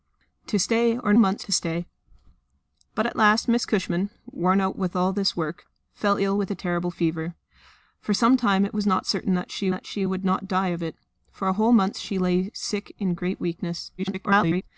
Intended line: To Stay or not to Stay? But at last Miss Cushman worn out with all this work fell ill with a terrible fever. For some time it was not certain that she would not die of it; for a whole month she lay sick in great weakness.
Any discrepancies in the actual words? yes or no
yes